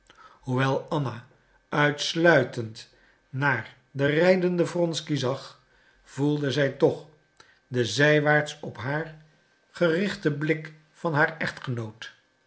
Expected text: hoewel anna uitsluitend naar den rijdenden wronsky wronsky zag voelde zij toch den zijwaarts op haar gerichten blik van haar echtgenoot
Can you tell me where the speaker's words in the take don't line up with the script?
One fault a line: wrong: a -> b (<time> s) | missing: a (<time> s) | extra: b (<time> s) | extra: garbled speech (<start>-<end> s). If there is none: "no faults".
missing: wronsky (5.2 s)